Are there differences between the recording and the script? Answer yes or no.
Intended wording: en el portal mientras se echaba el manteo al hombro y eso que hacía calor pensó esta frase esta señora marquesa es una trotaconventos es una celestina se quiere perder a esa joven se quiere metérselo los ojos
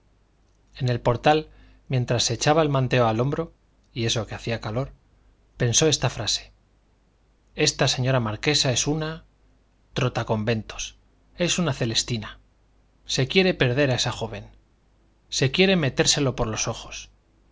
yes